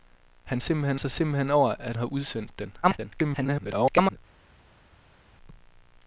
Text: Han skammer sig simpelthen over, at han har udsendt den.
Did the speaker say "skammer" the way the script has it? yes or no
no